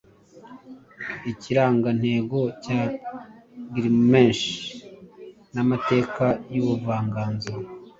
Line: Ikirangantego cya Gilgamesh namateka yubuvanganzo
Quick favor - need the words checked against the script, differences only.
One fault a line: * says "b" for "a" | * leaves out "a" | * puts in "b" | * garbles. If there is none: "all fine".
all fine